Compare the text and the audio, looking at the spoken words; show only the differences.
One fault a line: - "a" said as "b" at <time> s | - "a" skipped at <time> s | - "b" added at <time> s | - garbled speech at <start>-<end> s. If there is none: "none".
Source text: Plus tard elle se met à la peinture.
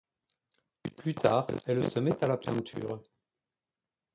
none